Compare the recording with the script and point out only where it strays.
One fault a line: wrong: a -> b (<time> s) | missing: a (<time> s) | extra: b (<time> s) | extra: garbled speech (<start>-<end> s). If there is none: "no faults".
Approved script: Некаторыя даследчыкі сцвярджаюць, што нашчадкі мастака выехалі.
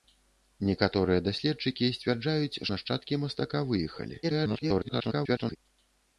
missing: што (2.6 s)
extra: garbled speech (4.2-5.6 s)